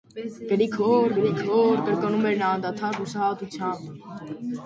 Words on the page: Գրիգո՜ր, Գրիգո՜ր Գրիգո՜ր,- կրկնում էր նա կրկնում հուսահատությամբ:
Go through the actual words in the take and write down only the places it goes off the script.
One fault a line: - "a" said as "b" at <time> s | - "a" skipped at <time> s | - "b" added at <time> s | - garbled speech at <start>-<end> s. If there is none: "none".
- "Գրիգո՜ր" skipped at 1.8 s
- "կրկնում" said as "անդադար" at 2.6 s